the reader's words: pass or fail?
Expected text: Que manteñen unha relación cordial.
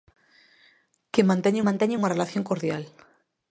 fail